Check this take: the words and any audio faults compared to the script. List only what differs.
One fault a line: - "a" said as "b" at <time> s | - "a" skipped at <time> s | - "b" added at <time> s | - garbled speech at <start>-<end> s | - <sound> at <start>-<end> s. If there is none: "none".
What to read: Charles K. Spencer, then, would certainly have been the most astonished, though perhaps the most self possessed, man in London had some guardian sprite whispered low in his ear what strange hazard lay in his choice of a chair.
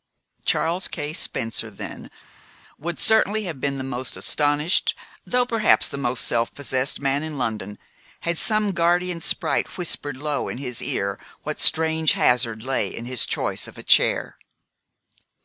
none